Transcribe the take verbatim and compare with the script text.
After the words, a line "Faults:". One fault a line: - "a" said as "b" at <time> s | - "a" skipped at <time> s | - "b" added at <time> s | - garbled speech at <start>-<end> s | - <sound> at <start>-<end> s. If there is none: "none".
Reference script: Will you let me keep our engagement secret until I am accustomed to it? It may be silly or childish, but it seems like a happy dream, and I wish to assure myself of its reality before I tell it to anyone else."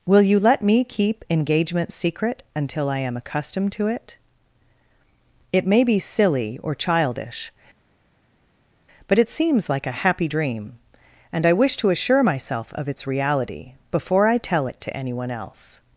Will you let me keep engagement secret until I am accustomed to it? It may be silly or childish, but it seems like a happy dream, and I wish to assure myself of its reality before I tell it to anyone else."
Faults:
- "our" skipped at 1.2 s